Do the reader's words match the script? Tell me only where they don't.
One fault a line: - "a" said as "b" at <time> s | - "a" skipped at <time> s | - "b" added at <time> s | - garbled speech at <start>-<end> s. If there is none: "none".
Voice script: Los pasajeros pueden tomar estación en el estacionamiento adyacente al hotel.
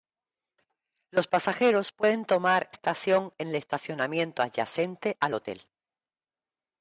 none